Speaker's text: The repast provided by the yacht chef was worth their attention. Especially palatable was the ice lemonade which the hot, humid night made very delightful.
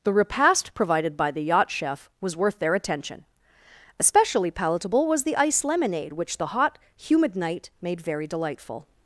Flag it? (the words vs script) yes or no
no